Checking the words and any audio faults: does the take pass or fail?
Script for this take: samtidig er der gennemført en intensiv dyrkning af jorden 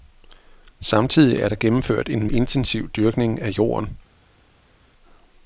pass